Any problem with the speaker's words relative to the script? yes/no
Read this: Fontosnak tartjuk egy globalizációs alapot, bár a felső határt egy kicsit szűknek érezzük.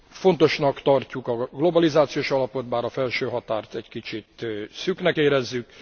yes